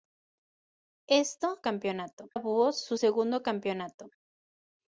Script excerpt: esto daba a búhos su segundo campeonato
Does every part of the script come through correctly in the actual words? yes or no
no